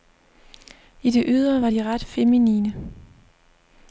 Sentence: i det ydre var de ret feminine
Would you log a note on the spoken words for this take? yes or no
no